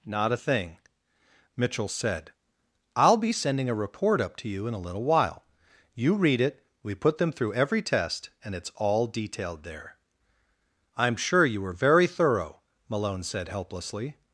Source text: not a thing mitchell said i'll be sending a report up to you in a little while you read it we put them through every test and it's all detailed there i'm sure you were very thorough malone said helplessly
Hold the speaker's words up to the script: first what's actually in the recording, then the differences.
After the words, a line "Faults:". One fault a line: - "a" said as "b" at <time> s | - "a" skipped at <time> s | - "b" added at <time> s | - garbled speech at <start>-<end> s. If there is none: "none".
not a thing mitchell said i'll be sending a report up to you in a little while you read it we put them through every test and it's all detailed there i'm sure you were very thorough malone said helplessly
Faults:
none